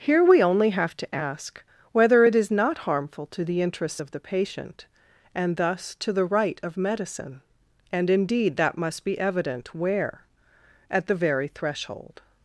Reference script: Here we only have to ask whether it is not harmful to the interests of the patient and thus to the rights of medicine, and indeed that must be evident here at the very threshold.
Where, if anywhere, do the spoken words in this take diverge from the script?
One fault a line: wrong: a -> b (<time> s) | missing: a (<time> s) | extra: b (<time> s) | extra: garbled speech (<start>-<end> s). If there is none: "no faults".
wrong: rights -> right (6.3 s)
wrong: here -> where (9.7 s)